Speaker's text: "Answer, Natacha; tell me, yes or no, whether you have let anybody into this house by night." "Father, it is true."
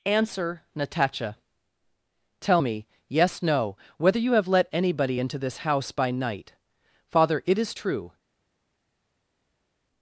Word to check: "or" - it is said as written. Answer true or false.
false